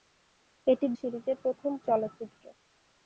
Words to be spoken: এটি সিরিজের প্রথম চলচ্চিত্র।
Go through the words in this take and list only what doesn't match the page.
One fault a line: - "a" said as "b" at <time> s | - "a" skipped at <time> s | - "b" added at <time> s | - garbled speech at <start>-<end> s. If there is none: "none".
none